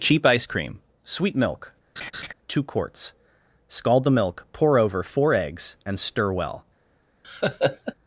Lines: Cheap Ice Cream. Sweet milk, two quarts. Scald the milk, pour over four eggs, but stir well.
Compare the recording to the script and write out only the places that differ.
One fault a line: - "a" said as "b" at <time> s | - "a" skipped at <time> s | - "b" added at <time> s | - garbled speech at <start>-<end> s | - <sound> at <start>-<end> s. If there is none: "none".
- laugh at 2.0-2.3 s
- "but" said as "and" at 5.8 s
- laugh at 7.2-7.9 s